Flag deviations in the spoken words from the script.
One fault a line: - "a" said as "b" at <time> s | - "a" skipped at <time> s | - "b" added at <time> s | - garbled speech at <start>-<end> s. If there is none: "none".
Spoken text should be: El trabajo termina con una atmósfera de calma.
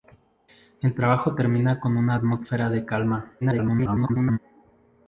- garbled speech at 3.4-4.4 s